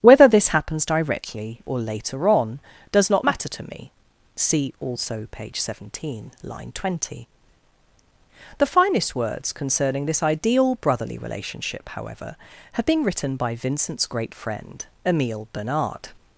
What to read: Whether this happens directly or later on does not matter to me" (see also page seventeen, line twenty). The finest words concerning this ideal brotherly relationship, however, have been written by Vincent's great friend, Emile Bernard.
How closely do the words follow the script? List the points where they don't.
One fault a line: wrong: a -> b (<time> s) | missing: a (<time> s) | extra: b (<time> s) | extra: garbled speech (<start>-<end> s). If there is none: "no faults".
no faults